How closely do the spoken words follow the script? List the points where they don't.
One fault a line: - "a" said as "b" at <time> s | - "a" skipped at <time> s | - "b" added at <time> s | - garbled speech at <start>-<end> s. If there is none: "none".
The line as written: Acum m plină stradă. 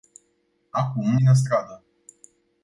none